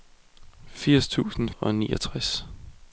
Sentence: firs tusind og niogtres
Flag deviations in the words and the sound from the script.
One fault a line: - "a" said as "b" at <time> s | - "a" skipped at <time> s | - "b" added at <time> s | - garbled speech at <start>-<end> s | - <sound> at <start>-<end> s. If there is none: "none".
none